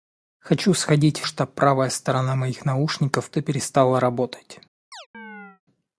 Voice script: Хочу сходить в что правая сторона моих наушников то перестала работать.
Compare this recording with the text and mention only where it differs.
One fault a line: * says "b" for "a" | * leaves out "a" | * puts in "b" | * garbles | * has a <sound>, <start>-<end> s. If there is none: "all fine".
* has a chirp, 4.9-5.6 s